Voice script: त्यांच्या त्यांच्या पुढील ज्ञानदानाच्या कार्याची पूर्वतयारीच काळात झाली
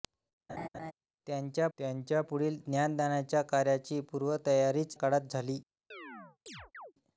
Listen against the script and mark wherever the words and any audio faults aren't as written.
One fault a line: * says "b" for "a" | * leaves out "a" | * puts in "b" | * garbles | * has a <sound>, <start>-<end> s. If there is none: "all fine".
* has a laugh, 0.5-0.9 s
* has a chirp, 5.9-6.9 s